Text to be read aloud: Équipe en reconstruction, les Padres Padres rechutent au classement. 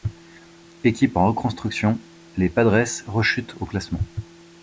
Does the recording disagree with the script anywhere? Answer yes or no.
yes